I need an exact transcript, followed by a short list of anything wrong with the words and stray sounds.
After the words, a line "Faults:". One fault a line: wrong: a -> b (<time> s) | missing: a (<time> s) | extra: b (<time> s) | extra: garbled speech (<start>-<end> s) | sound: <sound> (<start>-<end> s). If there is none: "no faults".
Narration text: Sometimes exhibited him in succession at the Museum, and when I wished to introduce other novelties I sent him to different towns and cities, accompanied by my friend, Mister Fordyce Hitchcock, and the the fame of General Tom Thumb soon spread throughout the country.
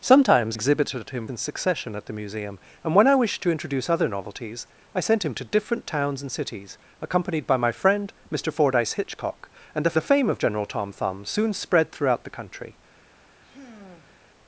Sometimes exhibited him in succession at the Museum, and when I wished to introduce other novelties I sent him to different towns and cities, accompanied by my friend, Mister Fordyce Hitchcock, and the the fame of General Tom Thumb soon spread throughout the country.
Faults:
sound: sigh (13.4-14.3 s)